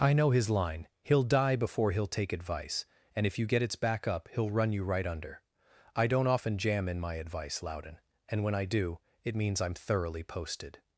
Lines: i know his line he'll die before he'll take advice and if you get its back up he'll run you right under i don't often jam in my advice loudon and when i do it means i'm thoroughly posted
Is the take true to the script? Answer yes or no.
yes